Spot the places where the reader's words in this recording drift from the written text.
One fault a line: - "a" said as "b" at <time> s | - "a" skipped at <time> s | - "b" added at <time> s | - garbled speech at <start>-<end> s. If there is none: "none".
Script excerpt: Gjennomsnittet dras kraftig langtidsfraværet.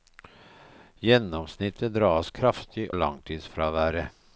none